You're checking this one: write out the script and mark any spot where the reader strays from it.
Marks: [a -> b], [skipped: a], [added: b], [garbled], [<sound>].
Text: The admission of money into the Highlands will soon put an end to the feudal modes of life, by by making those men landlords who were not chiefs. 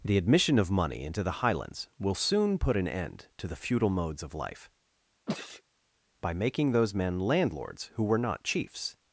The admission of money into the Highlands will soon put an end to the feudal modes of life, [sneeze] by [skipped: by] making those men landlords who were not chiefs.